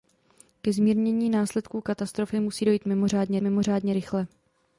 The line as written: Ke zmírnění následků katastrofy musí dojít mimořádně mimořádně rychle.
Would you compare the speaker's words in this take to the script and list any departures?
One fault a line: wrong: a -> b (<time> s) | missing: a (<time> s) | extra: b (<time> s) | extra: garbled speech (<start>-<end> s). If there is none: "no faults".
no faults